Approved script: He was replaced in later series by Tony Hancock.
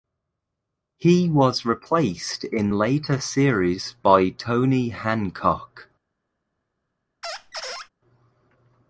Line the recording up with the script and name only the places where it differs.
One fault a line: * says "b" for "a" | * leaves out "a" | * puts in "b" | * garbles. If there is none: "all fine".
all fine